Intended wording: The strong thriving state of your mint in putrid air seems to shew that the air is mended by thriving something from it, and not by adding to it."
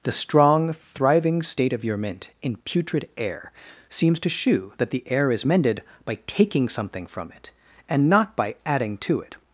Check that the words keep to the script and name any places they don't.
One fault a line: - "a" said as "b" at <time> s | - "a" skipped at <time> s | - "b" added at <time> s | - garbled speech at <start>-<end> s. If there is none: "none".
- "thriving" said as "taking" at 6.3 s